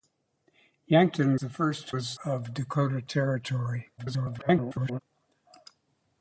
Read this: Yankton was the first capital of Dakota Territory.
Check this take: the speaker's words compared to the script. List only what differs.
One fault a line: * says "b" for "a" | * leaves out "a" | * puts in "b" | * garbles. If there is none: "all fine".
* leaves out "was"
* says "was" for "capital"
* garbles